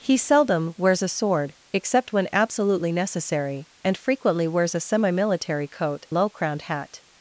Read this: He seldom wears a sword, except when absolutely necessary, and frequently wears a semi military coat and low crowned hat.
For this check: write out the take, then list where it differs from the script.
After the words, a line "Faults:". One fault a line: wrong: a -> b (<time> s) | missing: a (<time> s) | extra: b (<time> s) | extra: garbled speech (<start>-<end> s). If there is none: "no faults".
He seldom wears a sword, except when absolutely necessary, and frequently wears a semi military coat low crowned hat.
Faults:
missing: and (6.1 s)